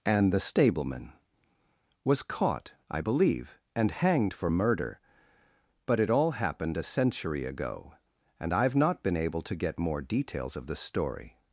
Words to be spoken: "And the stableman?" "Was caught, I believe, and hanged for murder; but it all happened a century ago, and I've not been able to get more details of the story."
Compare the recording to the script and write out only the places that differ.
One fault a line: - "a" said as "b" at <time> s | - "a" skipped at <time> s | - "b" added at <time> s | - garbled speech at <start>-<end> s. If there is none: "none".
none